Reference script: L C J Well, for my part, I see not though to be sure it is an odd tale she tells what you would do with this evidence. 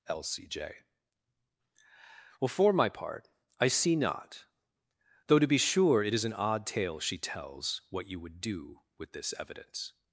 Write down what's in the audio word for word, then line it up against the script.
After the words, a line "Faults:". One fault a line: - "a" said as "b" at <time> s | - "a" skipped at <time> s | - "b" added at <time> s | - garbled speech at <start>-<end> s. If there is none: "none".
L C J Well, for my part, I see not though to be sure it is an odd tale she tells what you would do with this evidence.
Faults:
none